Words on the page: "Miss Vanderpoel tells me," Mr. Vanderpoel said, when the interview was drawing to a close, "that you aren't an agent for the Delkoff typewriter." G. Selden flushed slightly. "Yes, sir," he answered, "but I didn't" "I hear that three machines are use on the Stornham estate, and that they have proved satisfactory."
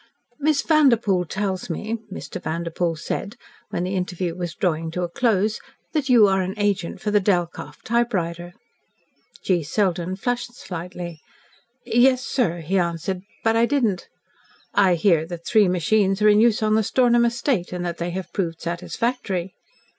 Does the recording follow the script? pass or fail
fail